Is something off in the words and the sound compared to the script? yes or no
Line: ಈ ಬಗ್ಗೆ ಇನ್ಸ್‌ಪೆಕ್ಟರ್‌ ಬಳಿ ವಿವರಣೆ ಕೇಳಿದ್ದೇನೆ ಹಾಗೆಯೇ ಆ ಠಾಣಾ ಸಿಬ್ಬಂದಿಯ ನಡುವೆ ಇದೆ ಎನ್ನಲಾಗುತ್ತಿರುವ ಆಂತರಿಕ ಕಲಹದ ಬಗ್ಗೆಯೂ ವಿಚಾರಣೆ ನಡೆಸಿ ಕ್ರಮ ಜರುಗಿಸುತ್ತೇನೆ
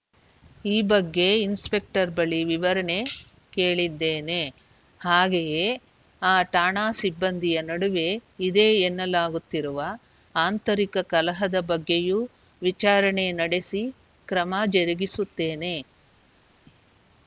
no